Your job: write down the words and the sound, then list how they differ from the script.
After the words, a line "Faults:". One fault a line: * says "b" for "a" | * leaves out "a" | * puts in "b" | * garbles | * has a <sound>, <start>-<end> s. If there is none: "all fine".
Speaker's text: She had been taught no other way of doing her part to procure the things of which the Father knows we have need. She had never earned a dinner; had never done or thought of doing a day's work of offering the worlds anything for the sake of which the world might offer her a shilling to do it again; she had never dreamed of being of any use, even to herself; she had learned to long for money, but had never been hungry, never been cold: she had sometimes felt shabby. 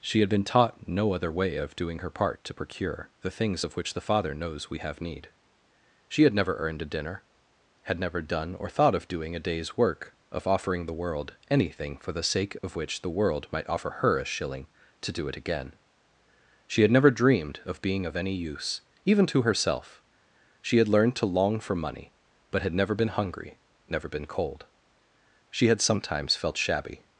She had been taught no other way of doing her part to procure the things of which the Father knows we have need. She had never earned a dinner; had never done or thought of doing a day's work of offering the world anything for the sake of which the world might offer her a shilling to do it again; she had never dreamed of being of any use, even to herself; she had learned to long for money, but had never been hungry, never been cold: she had sometimes felt shabby.
Faults:
* says "world" for "worlds"
* has a dropout, 12.6-12.6 s